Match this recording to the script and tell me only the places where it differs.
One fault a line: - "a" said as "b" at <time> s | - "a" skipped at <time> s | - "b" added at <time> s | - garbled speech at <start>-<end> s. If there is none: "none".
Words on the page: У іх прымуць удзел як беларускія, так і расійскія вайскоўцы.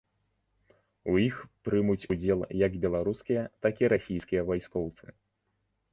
none